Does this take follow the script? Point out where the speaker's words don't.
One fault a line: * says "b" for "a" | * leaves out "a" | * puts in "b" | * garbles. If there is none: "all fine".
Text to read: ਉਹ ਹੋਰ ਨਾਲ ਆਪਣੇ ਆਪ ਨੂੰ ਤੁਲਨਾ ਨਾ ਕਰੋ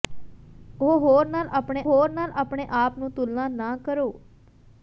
* puts in "ਹੋਰ ਨਾਲ ਆਪਣੇ"